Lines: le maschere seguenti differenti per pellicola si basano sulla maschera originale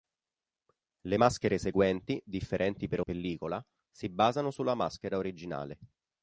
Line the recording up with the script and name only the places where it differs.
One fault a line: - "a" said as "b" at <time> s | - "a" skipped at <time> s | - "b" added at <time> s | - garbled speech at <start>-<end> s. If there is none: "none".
none